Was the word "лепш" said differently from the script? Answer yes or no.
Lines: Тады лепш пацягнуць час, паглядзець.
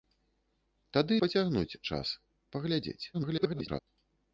yes